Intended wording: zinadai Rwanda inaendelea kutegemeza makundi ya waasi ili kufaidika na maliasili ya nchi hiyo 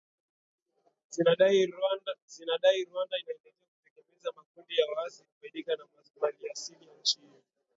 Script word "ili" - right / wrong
wrong